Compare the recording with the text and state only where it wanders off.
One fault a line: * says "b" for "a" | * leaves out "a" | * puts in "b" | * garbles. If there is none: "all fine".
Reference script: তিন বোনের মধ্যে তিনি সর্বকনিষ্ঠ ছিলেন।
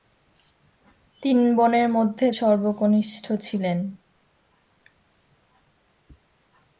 * leaves out "তিনি"